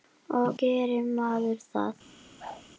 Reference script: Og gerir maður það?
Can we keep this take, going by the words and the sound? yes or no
no